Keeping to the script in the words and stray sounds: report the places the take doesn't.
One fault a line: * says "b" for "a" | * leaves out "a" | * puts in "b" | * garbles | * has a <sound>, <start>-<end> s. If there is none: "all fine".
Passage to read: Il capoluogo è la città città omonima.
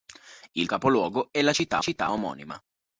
all fine